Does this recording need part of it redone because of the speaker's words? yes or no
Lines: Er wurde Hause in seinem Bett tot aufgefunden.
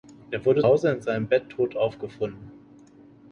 no